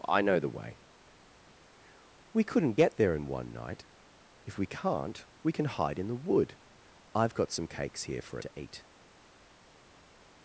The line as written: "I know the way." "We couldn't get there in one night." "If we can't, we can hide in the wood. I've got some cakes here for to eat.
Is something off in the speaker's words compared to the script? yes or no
no